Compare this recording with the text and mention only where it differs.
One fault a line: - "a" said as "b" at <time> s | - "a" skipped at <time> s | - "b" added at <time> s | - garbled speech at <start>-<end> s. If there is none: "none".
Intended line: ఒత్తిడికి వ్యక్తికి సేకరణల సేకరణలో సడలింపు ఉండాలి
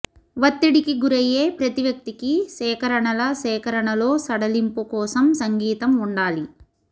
- "గురయ్యే ప్రతి" added at 1.0 s
- "కోసం సంగీతం" added at 4.9 s